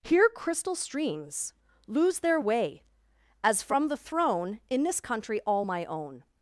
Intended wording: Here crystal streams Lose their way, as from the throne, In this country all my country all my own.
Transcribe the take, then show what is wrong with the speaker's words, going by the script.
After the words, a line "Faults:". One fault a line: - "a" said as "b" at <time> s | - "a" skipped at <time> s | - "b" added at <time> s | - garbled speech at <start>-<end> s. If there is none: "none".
Here crystal streams Lose their way, as from the throne, In this country all my own.
Faults:
- "country all my" skipped at 5.9 s